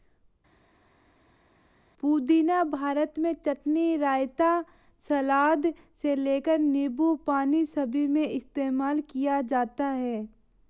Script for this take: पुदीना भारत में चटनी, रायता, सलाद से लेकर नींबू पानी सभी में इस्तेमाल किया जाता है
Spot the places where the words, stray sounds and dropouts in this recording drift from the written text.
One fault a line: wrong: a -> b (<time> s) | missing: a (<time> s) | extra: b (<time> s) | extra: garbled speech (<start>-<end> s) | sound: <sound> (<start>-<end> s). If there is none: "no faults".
no faults